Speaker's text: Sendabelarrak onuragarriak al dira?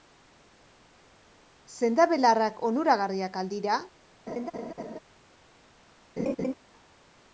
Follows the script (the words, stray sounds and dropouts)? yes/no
no